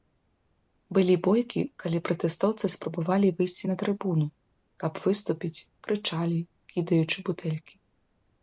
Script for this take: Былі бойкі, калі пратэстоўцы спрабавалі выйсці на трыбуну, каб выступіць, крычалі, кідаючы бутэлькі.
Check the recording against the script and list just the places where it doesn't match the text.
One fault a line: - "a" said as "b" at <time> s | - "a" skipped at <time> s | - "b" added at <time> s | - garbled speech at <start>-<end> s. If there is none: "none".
none